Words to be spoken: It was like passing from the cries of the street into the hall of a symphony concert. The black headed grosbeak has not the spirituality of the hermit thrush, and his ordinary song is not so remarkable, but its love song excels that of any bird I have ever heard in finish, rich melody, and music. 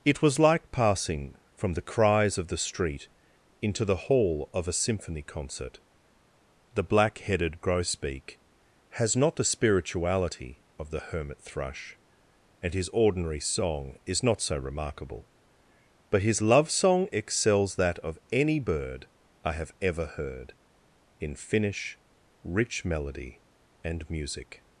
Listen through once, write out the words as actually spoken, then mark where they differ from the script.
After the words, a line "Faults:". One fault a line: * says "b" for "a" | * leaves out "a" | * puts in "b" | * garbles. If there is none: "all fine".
It was like passing from the cries of the street into the hall of a symphony concert. The black headed grosbeak has not the spirituality of the hermit thrush, and his ordinary song is not so remarkable, but his love song excels that of any bird I have ever heard in finish, rich melody, and music.
Faults:
* says "his" for "its"